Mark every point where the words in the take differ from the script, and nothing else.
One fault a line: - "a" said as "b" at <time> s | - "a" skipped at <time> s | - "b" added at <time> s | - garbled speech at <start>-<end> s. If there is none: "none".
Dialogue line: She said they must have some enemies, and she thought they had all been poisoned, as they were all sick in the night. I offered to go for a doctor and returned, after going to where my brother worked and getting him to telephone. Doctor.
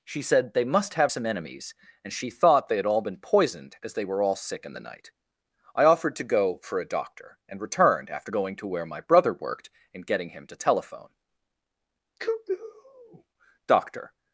- "cuckoo" added at 12.2 s